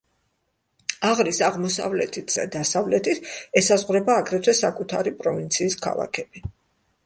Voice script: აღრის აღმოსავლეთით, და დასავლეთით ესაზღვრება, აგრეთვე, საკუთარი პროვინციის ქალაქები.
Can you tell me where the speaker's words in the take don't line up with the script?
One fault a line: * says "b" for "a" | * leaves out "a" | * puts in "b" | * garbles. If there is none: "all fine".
all fine